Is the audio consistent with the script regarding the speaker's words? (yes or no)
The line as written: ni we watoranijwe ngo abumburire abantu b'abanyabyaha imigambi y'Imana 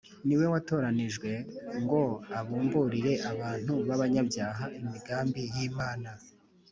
yes